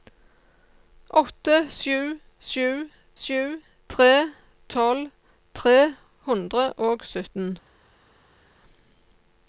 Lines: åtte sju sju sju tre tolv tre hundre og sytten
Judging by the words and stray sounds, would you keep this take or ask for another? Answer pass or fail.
pass